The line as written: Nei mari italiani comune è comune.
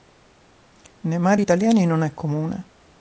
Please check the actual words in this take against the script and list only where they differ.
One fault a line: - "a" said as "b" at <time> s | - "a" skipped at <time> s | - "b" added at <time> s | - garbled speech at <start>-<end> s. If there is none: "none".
- "comune" said as "non" at 1.9 s